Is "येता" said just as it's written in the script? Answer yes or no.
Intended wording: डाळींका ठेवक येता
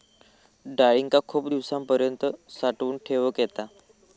yes